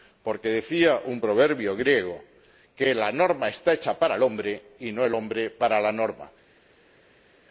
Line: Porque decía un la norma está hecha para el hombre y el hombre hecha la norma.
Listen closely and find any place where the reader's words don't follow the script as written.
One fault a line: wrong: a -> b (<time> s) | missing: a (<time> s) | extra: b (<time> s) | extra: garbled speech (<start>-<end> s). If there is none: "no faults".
extra: proverbio griego que (1.2 s)
extra: no (4.9 s)
wrong: hecha -> para (5.5 s)